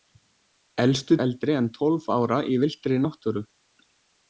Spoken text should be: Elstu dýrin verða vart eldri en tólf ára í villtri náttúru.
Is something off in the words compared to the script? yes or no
yes